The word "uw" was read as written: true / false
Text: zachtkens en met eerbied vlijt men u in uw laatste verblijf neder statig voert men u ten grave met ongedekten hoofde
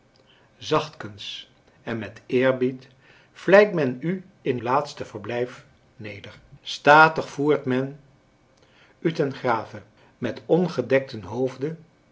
false